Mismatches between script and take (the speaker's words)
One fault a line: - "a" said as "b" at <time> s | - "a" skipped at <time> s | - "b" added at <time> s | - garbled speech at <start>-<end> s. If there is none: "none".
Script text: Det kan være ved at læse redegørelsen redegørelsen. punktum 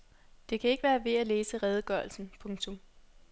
- "ikke" added at 0.7 s
- "redegørelsen" skipped at 2.3 s